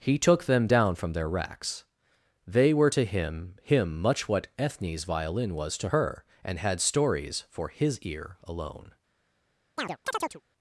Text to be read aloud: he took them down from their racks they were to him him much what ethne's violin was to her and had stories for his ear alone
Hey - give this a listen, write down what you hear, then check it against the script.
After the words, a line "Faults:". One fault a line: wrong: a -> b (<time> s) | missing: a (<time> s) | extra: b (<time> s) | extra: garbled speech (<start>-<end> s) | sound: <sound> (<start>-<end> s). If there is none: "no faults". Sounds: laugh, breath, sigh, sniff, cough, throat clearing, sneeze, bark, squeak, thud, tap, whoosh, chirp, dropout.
he took them down from their racks they were to him him much what ethne's violin was to her and had stories for his ear alone
Faults:
sound: chirp (9.8-10.4 s)